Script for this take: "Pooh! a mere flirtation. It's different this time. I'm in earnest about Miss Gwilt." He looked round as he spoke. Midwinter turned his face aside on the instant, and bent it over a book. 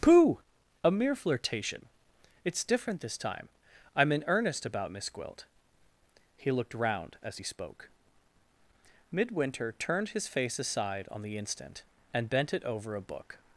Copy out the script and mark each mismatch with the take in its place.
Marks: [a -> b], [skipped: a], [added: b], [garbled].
"Pooh! a mere flirtation. It's different this time. I'm in earnest about Miss Gwilt." He looked round as he spoke. Midwinter turned his face aside on the instant, and bent it over a book.